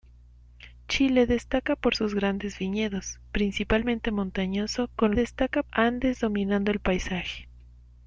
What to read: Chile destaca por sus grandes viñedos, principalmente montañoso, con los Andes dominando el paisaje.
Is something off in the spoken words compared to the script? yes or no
yes